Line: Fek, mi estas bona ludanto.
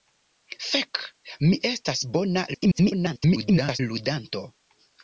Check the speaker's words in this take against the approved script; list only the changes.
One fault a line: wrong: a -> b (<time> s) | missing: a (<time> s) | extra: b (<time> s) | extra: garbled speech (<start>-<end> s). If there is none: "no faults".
extra: garbled speech (2.5-3.8 s)